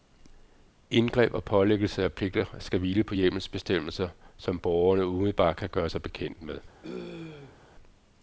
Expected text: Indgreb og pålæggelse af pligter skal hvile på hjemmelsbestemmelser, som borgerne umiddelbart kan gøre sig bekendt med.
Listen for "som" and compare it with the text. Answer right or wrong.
right